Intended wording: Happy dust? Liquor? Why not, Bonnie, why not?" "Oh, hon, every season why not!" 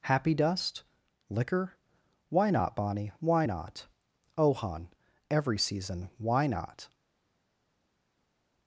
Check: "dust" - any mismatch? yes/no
no